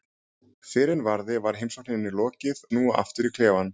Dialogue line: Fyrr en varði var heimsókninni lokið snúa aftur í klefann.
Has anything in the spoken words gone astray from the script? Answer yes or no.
no